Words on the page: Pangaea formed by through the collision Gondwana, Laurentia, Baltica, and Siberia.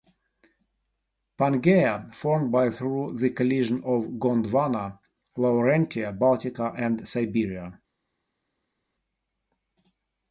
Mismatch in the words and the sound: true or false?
true